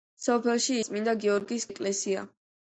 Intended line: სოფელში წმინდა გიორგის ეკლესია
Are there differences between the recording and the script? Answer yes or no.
no